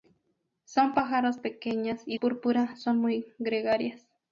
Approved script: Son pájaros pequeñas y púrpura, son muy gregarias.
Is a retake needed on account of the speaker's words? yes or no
no